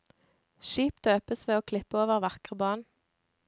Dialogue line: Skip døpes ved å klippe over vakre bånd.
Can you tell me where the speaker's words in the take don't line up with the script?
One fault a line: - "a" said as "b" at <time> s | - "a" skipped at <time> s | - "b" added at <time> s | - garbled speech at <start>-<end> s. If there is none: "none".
none